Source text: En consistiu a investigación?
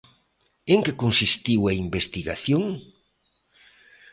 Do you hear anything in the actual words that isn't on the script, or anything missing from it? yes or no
yes